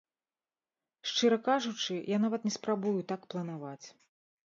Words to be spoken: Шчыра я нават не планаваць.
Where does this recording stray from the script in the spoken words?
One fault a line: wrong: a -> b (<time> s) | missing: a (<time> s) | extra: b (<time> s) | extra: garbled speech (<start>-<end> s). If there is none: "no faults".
extra: кажучы (1.5 s)
extra: спрабую так (2.6 s)